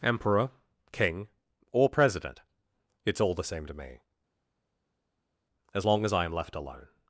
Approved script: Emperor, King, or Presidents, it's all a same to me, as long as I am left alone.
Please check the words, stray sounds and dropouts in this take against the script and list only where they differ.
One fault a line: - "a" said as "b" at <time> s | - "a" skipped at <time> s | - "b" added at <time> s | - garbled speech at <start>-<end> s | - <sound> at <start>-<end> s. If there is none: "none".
- "Presidents" said as "President" at 1.9 s
- "a" said as "the" at 3.3 s